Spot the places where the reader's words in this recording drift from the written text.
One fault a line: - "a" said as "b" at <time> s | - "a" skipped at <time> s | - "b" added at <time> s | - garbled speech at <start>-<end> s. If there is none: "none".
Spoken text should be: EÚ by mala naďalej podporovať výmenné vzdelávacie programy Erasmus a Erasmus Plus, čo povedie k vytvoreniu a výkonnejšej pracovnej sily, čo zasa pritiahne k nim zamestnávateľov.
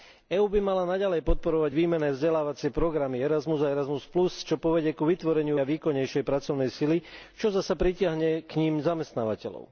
none